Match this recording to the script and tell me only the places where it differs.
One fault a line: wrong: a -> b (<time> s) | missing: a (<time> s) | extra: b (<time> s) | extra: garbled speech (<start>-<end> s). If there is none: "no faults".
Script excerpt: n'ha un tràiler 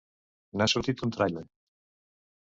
extra: sortit (0.7 s)